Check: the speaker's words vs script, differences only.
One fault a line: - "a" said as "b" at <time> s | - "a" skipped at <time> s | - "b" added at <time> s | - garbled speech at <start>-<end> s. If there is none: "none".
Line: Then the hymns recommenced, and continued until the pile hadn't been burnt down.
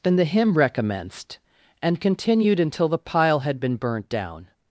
- "hymns" said as "hymn" at 0.2 s
- "hadn't" said as "had" at 3.4 s